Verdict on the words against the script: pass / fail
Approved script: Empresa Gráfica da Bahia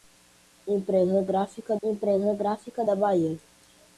fail